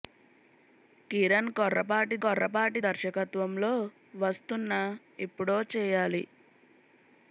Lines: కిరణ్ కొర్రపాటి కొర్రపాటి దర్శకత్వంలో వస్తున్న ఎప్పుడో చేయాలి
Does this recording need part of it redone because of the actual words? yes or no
no